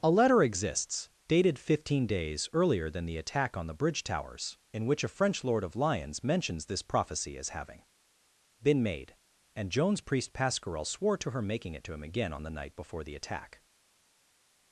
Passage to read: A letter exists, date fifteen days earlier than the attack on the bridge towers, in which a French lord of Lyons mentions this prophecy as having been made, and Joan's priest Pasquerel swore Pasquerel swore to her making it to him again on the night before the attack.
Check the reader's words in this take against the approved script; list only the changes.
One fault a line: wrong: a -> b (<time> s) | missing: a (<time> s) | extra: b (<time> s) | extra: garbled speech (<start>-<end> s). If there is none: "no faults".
wrong: date -> dated (1.3 s)
missing: Pasquerel swore (11.2 s)